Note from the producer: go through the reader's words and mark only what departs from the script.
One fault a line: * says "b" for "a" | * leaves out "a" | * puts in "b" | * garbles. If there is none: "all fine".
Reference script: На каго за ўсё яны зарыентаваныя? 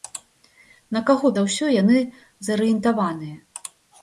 all fine